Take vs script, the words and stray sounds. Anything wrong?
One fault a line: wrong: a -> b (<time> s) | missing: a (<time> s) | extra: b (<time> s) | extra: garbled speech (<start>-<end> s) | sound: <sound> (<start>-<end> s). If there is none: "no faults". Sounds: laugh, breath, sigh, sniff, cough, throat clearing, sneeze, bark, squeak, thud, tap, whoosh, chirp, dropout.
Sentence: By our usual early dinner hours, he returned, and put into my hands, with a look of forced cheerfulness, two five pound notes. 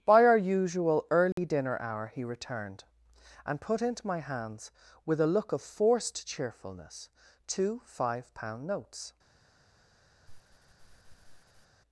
sound: dropout (1.3-1.4 s)
wrong: hours -> hour (1.8 s)
sound: sniff (10.3-11.7 s)